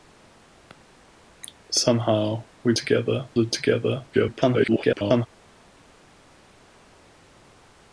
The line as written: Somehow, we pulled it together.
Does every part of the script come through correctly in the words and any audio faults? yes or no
no